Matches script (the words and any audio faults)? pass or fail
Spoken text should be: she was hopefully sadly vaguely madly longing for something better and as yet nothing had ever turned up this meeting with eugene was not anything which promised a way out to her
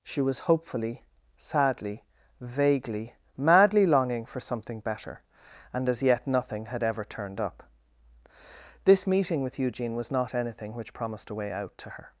pass